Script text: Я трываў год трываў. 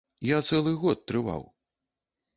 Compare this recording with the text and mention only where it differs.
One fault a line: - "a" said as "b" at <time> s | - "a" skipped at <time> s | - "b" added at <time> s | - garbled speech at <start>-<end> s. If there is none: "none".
- "трываў" said as "цэлы" at 0.5 s